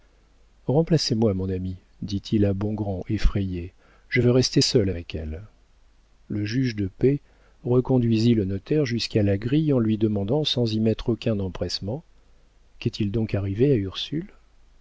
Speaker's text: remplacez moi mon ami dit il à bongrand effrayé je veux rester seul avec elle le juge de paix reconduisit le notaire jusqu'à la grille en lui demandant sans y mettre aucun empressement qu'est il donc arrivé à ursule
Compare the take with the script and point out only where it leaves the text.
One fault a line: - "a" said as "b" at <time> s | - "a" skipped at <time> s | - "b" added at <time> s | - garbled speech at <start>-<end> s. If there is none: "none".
none